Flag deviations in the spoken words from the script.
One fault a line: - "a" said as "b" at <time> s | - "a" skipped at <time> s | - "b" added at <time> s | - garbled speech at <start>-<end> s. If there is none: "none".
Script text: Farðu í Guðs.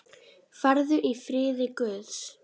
- "friði" added at 1.2 s